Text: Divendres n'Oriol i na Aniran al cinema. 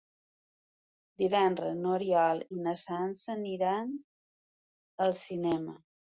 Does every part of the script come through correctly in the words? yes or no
no